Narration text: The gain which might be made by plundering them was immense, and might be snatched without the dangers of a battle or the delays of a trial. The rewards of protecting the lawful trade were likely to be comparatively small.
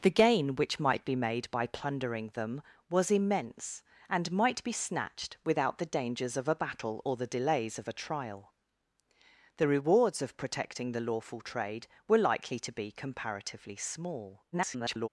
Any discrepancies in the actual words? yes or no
yes